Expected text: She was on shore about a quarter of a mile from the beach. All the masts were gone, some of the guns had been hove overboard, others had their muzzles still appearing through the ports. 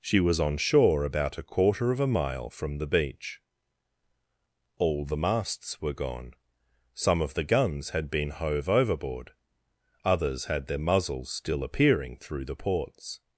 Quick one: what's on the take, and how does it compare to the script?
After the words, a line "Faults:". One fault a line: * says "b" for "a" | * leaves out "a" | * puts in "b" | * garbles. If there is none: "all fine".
She was on shore about a quarter of a mile from the beach. All the masts were gone, some of the guns had been hove overboard, others had their muzzles still appearing through the ports.
Faults:
all fine